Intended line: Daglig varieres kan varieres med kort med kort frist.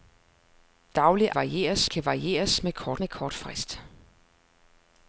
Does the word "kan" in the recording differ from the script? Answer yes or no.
no